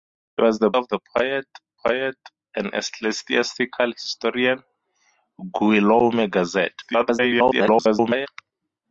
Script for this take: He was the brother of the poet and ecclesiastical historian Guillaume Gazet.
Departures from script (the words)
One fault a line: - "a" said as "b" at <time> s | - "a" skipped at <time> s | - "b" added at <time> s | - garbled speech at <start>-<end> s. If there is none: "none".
- "brother" skipped at 0.7 s
- "poet" added at 1.9 s
- garbled speech at 6.8-8.3 s